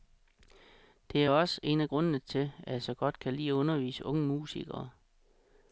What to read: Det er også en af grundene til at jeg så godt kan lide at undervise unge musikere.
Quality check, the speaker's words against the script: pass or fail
pass